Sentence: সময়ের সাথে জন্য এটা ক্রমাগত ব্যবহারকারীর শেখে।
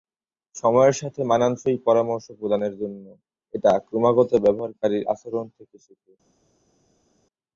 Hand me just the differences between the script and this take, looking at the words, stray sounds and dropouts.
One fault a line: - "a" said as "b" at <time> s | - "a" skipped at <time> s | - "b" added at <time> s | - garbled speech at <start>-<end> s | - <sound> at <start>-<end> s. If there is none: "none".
- "মানানসই পরামর্শ প্রদানের" added at 1.2 s
- "আচরণ থেকে" added at 5.1 s